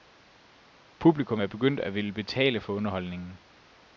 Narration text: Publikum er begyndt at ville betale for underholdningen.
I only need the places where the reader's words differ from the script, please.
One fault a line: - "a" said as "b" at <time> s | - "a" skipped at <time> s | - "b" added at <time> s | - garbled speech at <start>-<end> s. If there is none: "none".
none